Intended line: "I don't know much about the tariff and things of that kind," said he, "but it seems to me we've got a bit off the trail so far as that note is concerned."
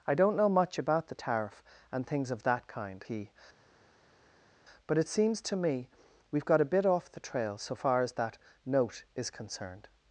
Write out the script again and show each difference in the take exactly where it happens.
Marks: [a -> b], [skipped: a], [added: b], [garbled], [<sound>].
"I don't know much about the tariff and things of that kind," [skipped: said] he, "but it seems to me we've got a bit off the trail so far as that note is concerned."